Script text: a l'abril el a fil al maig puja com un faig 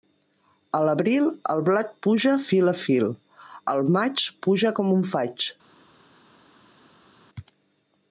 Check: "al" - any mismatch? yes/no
no